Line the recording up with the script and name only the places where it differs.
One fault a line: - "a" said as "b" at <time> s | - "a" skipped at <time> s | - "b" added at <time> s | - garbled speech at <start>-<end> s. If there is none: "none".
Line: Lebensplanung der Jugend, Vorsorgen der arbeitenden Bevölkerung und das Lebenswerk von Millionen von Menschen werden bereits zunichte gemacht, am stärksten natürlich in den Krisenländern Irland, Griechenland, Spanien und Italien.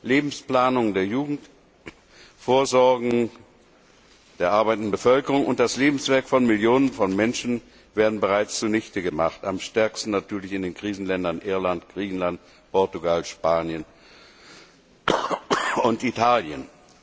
- "Portugal" added at 12.7 s